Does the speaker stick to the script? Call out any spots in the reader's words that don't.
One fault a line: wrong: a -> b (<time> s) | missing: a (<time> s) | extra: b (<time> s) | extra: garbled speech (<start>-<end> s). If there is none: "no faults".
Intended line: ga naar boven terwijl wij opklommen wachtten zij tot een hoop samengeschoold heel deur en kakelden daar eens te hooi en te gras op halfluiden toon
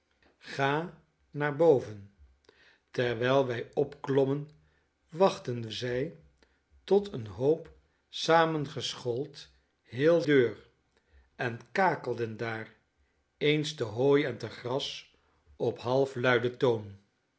no faults